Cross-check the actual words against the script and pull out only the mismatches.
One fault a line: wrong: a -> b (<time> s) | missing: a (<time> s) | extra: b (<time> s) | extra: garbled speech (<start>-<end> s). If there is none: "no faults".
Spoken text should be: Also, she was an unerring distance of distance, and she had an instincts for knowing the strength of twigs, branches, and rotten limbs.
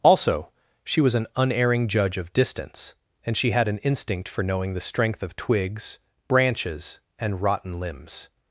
wrong: distance -> judge (1.9 s)
wrong: instincts -> instinct (3.8 s)